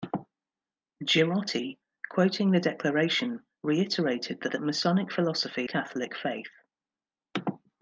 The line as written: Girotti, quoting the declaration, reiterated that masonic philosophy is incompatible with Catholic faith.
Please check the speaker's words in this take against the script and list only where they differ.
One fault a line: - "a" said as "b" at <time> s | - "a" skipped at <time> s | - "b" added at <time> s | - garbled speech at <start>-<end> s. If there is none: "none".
- "that" added at 4.5 s
- "is incompatible with" skipped at 5.7 s